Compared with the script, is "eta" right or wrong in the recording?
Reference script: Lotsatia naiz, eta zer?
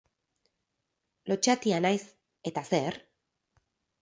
right